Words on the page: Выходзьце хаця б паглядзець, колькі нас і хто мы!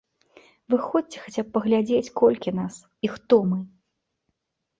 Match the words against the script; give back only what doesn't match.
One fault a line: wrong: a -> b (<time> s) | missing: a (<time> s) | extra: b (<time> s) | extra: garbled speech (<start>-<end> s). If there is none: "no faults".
no faults